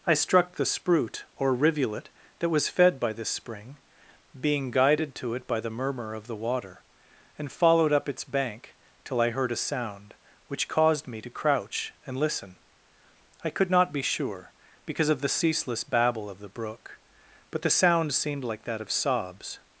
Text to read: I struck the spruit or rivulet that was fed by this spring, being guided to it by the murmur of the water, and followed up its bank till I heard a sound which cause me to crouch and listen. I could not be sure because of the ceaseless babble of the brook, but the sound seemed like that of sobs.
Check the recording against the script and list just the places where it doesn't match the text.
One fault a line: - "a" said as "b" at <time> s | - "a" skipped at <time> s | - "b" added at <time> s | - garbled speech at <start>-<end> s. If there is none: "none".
- "cause" said as "caused" at 10.7 s